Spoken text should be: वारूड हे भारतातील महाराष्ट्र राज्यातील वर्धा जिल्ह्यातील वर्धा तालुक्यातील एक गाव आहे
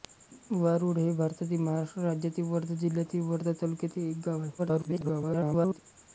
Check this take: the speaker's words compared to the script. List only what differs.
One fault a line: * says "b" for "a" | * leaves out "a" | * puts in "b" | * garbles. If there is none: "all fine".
* garbles